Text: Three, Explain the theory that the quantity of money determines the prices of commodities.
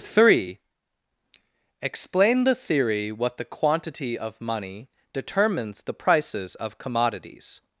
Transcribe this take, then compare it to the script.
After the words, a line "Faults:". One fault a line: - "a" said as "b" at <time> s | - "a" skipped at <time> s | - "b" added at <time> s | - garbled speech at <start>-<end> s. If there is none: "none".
Three, Explain the theory what the quantity of money determines the prices of commodities.
Faults:
- "that" said as "what" at 3.1 s